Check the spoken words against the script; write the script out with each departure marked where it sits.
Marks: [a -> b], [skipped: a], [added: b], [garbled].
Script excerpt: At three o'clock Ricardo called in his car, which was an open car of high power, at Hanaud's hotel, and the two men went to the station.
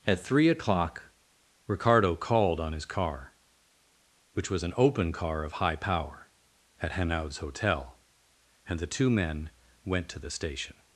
At three o'clock Ricardo called [in -> on] his car, which was an open car of high power, at Hanaud's hotel, and the two men went to the station.